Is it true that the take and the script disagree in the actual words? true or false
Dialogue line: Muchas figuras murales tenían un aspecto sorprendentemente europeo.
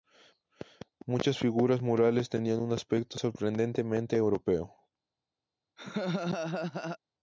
false